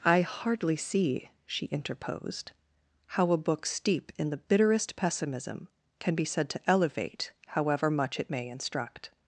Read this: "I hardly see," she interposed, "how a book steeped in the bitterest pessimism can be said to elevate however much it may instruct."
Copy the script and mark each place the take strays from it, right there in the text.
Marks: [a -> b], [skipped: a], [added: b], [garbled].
"I hardly see," she interposed, "how a book [steeped -> steep] in the bitterest pessimism can be said to elevate however much it may instruct."